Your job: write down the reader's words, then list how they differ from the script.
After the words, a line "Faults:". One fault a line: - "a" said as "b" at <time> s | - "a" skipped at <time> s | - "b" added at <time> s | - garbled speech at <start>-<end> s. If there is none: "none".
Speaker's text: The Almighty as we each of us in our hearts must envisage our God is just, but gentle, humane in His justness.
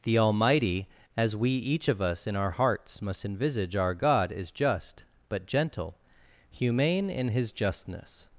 The Almighty as we each of us in our hearts must envisage our God is just, but gentle, humane in His justness.
Faults:
none